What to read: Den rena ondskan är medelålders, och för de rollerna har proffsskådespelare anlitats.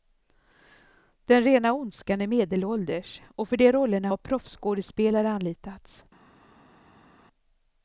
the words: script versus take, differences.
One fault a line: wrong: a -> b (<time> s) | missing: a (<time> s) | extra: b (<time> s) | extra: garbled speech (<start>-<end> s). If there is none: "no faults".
no faults